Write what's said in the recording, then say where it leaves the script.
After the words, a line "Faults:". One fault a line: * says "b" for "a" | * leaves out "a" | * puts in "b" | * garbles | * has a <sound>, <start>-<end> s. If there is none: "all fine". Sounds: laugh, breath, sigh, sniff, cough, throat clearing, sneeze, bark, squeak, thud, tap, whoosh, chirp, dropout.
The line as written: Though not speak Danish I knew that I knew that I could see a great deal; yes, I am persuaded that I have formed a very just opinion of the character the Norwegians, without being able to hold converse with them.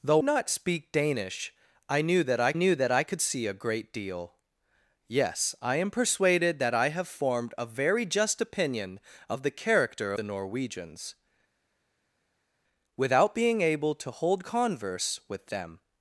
Though not speak Danish I knew that I knew that I could see a great deal; yes, I am persuaded that I have formed a very just opinion of the character the Norwegians, without being able to hold converse with them.
Faults:
all fine